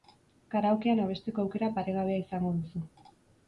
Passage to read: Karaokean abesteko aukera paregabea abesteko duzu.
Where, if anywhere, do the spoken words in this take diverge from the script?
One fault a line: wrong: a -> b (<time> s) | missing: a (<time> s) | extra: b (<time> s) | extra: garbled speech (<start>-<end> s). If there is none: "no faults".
wrong: abesteko -> izango (2.3 s)